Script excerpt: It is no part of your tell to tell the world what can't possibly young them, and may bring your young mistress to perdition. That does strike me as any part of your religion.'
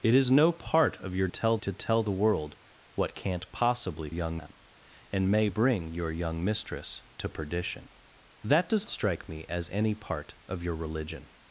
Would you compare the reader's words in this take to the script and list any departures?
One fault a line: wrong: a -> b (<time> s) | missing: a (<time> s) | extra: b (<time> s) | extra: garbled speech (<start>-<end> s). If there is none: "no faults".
no faults